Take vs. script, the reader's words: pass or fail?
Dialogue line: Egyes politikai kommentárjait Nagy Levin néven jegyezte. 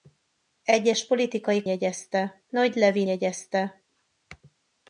fail